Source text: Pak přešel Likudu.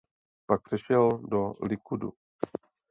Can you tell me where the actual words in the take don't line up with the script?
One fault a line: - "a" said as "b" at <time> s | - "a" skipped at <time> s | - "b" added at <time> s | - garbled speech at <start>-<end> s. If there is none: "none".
- "do" added at 1.1 s